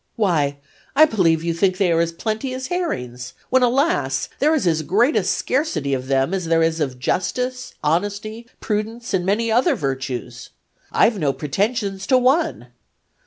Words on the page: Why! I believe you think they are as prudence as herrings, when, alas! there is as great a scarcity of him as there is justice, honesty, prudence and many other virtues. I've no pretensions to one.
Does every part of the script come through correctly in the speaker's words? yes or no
no